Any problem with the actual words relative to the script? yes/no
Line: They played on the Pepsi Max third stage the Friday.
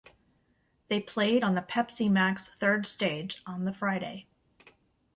yes